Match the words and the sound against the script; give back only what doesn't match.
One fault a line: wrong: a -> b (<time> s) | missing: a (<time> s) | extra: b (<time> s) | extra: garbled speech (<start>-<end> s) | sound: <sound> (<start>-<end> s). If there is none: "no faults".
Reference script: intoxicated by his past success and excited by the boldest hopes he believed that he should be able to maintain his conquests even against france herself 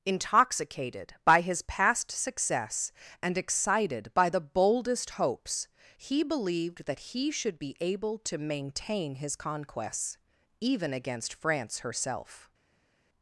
no faults